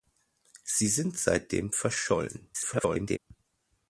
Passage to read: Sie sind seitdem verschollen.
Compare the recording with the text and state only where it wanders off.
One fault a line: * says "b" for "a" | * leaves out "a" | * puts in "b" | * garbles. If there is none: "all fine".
* garbles